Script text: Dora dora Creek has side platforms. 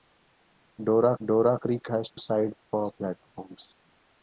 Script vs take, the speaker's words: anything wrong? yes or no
no